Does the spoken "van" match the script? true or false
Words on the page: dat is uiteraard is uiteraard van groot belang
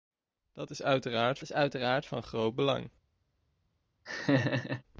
true